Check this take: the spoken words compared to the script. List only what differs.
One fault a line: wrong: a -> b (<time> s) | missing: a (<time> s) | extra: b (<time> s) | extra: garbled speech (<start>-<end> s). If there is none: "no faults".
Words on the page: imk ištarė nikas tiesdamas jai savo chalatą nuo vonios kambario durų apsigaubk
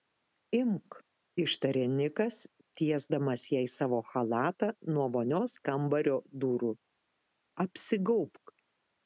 no faults